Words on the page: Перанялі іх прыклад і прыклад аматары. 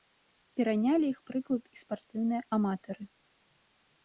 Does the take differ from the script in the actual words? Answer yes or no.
yes